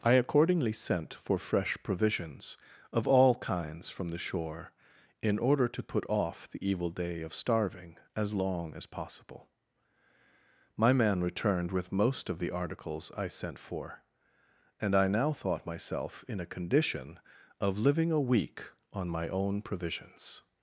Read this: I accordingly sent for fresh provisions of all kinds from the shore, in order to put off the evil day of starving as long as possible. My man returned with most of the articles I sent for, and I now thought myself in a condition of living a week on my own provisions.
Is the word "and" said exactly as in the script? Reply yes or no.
yes